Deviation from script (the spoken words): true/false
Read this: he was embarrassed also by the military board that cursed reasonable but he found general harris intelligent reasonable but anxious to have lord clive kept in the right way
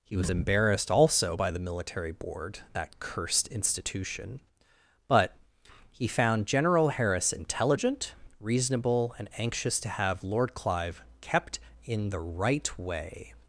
true